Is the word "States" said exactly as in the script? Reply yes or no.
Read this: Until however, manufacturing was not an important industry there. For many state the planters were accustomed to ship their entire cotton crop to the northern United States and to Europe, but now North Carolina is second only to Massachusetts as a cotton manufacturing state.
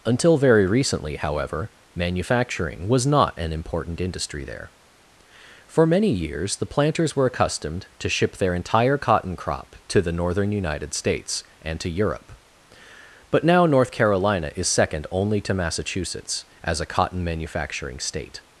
yes